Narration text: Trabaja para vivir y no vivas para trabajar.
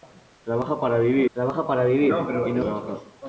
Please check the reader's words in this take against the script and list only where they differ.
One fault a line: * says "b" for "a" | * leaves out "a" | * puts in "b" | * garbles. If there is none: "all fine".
* puts in "trabaja para vivir"
* leaves out "vivas para"